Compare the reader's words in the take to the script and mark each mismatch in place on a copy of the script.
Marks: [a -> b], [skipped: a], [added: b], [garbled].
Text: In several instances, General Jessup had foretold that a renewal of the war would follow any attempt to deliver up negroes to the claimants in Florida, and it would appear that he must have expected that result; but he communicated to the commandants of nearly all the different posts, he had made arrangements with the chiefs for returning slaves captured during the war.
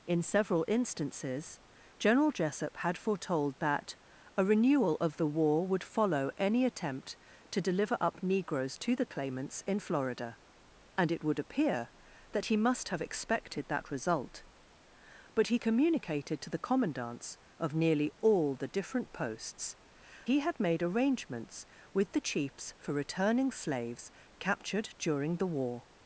In several instances, General Jessup had foretold that a renewal of the war would follow any attempt to deliver up negroes to the claimants in Florida, and it would appear that he must have expected that result; but he communicated to the commandants of nearly all the different posts, he had made arrangements with the chiefs for returning slaves captured during the war.